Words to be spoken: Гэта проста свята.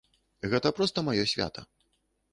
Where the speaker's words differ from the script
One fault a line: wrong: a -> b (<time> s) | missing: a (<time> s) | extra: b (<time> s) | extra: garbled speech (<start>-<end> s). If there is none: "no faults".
extra: маё (1.1 s)